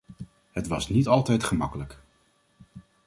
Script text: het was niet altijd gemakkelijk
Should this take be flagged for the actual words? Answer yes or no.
no